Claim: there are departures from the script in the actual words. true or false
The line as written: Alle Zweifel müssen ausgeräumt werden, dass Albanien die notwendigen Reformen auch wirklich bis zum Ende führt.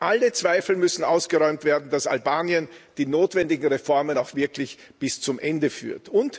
false